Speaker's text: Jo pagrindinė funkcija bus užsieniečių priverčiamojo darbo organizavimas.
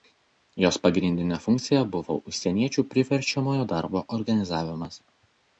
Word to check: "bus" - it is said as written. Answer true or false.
false